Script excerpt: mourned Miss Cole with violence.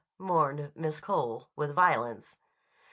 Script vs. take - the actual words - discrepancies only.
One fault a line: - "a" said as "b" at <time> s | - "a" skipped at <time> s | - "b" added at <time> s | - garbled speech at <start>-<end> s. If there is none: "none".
none